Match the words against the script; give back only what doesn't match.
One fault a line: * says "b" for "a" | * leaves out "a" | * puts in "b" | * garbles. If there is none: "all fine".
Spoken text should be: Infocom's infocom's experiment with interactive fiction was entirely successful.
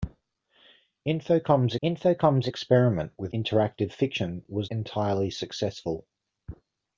all fine